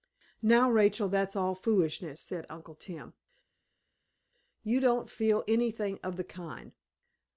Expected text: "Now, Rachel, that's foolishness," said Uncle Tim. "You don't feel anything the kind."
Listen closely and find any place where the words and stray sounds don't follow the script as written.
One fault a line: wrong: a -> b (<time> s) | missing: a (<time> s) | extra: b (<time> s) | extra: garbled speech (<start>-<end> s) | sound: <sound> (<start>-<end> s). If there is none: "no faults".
extra: all (1.4 s)
extra: of (6.0 s)